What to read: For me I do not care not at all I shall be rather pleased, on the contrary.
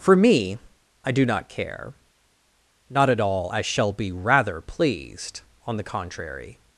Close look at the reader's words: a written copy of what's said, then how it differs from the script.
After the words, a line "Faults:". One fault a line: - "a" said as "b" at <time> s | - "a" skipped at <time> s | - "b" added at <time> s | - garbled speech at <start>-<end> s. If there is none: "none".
For me I do not care not at all I shall be rather pleased, on the contrary.
Faults:
none